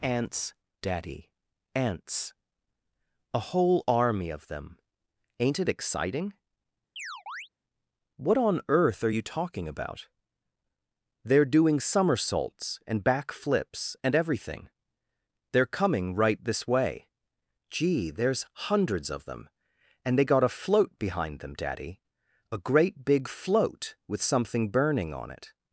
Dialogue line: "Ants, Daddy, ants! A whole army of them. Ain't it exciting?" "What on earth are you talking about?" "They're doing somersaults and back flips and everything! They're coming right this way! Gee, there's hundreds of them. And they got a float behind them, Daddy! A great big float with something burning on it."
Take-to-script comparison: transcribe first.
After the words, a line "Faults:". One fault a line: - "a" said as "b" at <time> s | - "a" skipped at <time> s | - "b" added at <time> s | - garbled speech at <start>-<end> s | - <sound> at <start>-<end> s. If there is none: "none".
"Ants, Daddy, ants! A whole army of them. Ain't it exciting?" "What on earth are you talking about?" "They're doing somersaults and back flips and everything! They're coming right this way! Gee, there's hundreds of them. And they got a float behind them, Daddy! A great big float with something burning on it."
Faults:
- chirp at 7.0-7.5 s